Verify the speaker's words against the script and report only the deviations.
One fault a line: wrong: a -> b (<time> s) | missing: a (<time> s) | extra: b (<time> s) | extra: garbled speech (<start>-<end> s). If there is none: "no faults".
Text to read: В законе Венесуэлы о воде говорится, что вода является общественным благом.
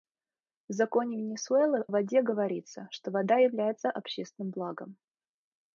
missing: о (1.9 s)